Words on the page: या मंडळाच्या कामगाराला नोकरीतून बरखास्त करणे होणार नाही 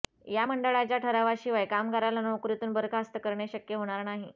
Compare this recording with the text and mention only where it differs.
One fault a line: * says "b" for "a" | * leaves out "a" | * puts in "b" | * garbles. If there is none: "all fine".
* puts in "ठरावाशिवाय"
* puts in "शक्य"